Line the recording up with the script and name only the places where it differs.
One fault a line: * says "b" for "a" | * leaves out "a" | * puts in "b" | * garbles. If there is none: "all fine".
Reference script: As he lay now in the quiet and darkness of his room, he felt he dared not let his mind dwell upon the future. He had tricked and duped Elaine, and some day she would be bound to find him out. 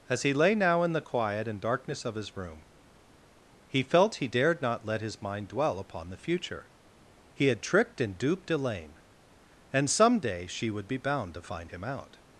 all fine